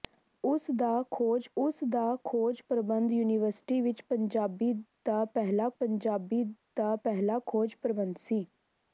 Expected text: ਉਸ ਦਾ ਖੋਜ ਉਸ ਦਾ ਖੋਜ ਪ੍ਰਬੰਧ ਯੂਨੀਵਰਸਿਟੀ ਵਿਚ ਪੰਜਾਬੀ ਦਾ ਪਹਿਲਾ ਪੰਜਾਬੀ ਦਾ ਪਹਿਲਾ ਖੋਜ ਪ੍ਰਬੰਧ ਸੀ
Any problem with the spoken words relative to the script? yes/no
no